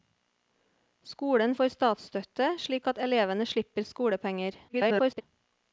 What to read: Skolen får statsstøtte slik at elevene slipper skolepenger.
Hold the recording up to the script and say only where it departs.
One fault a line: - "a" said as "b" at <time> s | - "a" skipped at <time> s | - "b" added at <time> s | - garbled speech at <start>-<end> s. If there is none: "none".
- garbled speech at 4.7-5.2 s